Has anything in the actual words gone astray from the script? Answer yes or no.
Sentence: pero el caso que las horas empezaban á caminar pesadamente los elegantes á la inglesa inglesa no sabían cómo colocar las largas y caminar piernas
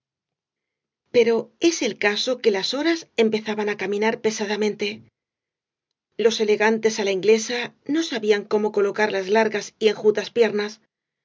yes